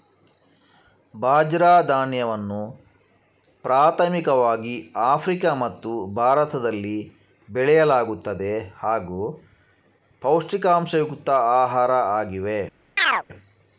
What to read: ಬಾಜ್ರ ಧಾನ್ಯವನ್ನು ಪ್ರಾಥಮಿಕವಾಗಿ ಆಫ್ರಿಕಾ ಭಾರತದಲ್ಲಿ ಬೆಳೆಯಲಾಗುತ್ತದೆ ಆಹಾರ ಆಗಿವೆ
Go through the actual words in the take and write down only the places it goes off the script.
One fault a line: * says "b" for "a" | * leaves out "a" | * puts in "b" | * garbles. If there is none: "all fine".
* puts in "ಮತ್ತು"
* puts in "ಹಾಗೂ ಪೌಷ್ಟಿಕಾಂಶಯುಕ್ತ"